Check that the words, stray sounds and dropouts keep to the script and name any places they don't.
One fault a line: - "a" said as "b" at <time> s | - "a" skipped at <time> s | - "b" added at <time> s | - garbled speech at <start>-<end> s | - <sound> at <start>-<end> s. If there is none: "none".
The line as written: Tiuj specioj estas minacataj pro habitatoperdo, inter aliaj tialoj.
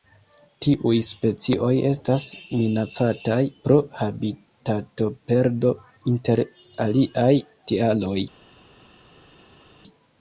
none